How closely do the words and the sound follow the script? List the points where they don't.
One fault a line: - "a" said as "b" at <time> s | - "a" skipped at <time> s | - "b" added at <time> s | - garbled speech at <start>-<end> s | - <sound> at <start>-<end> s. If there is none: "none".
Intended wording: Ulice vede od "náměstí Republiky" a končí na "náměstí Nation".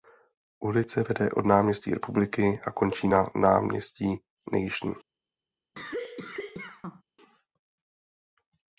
- cough at 5.7-7.0 s